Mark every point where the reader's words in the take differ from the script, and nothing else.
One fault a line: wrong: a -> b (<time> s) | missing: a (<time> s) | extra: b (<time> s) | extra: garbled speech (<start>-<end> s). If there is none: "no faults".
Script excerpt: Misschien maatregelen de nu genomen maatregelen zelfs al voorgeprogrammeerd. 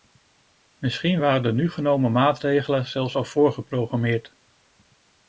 wrong: maatregelen -> waren (1.2 s)